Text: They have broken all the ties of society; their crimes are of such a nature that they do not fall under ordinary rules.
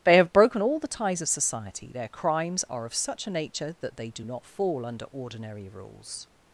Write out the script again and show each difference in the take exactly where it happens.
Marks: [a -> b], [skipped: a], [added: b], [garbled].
They have broken all the ties of society; their crimes are of such a nature that they do not fall under ordinary rules.